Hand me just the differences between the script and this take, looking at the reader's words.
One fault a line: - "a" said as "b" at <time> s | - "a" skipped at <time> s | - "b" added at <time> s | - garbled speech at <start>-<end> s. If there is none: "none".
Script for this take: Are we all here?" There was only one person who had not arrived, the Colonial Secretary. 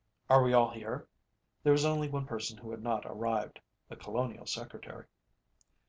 none